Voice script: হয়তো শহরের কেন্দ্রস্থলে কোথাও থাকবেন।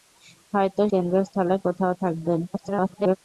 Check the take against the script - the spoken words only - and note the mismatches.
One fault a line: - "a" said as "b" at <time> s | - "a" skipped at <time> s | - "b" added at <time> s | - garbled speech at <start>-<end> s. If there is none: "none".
- "শহরের" skipped at 0.8 s
- garbled speech at 2.5-3.2 s